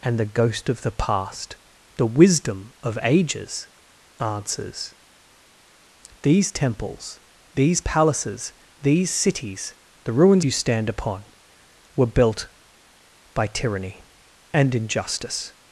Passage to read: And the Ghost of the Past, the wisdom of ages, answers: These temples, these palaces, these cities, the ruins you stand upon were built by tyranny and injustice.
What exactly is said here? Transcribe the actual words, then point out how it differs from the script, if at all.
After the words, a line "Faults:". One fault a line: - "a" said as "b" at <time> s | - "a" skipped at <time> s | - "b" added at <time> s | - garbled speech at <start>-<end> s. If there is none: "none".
And the Ghost of the Past, the wisdom of ages, answers: These temples, these palaces, these cities, the ruins you stand upon were built by tyranny and injustice.
Faults:
none